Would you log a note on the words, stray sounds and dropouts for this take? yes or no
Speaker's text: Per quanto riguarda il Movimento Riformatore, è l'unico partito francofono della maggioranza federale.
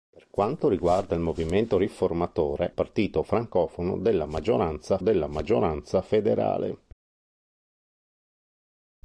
yes